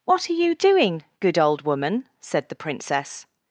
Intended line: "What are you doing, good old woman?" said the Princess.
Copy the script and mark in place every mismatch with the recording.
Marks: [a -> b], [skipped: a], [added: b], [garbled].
"What are you doing, good old woman?" said the Princess.